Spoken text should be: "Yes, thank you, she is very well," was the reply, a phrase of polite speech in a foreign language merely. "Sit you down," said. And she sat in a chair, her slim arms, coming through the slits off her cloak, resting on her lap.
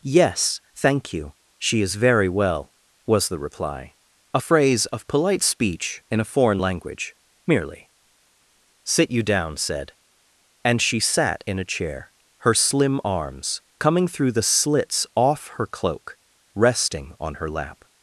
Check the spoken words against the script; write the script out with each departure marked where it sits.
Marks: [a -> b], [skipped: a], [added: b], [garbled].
"Yes, thank you, she is very well," was the reply, a phrase of polite speech in a foreign language merely. "Sit you down," said. And she sat in a chair, her slim arms, coming through the slits off her cloak, resting on her lap.